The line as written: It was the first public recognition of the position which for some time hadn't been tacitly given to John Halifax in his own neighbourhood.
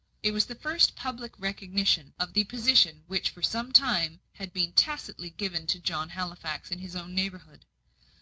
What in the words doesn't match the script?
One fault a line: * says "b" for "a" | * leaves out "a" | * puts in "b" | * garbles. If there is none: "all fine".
* says "had" for "hadn't"